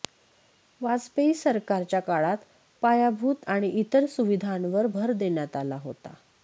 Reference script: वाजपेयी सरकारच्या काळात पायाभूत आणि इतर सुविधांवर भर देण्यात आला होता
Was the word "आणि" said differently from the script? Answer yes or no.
no